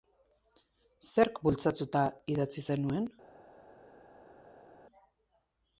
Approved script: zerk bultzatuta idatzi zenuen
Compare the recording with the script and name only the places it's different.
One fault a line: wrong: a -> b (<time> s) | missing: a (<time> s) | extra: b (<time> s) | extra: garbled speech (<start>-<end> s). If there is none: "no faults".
no faults